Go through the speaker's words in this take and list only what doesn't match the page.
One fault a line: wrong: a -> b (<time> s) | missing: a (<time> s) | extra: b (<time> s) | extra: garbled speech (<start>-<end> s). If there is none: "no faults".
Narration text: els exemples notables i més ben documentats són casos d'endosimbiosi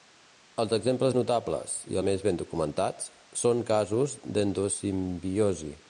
no faults